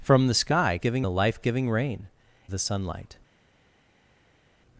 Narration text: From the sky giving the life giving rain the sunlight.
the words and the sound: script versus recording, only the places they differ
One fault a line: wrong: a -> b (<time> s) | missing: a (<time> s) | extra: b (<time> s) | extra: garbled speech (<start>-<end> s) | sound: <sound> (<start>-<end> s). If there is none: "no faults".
no faults